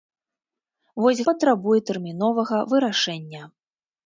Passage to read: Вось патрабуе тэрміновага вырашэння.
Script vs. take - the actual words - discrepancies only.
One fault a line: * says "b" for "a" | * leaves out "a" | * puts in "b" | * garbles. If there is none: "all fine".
all fine